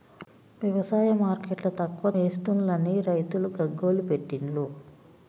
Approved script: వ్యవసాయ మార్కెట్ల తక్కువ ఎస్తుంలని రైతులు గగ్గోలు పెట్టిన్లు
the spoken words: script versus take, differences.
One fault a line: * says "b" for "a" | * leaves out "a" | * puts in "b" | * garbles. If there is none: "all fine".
all fine